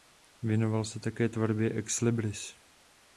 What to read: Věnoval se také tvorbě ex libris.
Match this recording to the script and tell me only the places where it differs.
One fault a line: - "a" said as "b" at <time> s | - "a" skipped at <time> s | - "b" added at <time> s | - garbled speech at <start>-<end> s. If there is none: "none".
none